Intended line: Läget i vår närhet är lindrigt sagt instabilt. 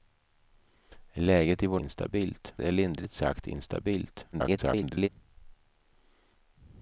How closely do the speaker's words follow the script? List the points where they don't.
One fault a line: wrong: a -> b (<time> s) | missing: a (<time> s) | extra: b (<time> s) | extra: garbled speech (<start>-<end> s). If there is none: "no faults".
wrong: närhet -> instabilt (1.8 s)
extra: garbled speech (4.3-5.1 s)